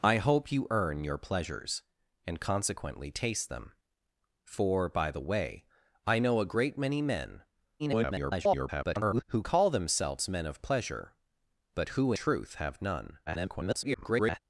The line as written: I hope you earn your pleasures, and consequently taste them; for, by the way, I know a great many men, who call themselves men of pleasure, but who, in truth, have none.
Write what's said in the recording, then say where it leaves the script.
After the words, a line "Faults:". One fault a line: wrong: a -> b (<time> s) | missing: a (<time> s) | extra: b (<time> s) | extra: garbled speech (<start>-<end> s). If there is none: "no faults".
I hope you earn your pleasures, and consequently taste them; for, by the way, I know a great many men, [garbled] who call themselves men of pleasure, but who, truth, have none. [garbled]
Faults:
extra: garbled speech (7.8-9.2 s)
missing: in (12.1 s)
extra: garbled speech (13.3-14.4 s)